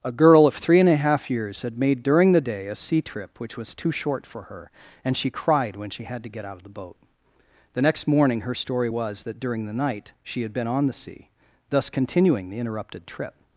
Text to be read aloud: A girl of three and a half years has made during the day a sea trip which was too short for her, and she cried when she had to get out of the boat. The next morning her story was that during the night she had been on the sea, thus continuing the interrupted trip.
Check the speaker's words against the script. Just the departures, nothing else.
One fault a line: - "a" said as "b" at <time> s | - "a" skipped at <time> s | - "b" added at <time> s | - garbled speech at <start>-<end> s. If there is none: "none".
- "has" said as "had" at 1.6 s